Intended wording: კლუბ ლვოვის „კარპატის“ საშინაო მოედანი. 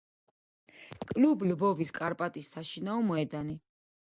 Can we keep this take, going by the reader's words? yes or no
yes